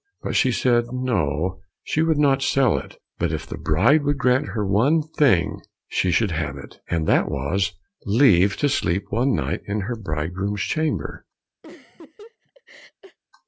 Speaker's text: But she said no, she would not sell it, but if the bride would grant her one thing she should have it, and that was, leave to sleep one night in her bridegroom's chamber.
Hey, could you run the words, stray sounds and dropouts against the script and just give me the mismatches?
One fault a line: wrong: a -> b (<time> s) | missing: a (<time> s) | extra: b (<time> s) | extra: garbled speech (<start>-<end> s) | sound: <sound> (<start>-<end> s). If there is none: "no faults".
sound: laugh (11.6-13.2 s)